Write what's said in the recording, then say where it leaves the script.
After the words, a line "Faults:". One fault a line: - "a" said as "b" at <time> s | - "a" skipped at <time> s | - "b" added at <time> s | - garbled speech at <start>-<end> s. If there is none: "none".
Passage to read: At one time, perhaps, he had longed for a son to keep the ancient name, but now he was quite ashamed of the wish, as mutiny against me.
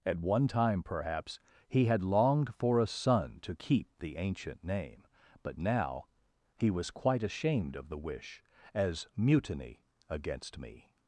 At one time, perhaps, he had longed for a son to keep the ancient name, but now he was quite ashamed of the wish, as mutiny against me.
Faults:
none